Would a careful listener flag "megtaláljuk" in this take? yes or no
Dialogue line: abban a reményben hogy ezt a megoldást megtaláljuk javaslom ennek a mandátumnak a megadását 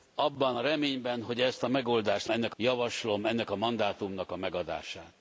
yes